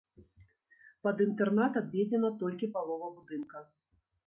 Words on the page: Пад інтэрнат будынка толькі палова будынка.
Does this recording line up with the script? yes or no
no